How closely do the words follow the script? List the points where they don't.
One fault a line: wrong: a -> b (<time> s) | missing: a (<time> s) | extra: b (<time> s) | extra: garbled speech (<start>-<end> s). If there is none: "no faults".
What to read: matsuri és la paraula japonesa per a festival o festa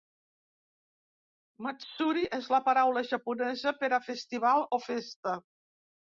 no faults